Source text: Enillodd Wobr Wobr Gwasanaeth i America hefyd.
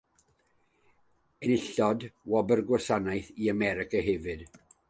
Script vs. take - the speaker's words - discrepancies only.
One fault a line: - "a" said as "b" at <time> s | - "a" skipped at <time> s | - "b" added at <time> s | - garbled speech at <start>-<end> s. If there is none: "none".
- "Wobr" skipped at 2.6 s